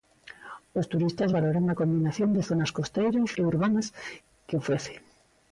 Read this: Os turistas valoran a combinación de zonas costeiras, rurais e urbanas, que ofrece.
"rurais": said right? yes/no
no